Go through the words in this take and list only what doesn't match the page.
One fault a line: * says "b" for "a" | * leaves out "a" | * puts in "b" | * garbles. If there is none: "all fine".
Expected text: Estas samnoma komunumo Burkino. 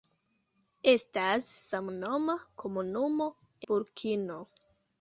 all fine